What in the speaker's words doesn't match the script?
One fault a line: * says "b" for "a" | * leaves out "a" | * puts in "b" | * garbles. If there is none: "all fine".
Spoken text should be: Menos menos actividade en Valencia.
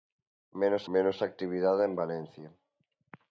all fine